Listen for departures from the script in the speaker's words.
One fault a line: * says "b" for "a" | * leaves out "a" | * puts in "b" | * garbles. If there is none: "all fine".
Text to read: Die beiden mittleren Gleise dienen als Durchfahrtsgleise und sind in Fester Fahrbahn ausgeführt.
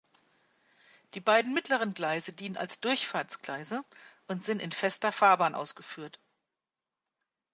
all fine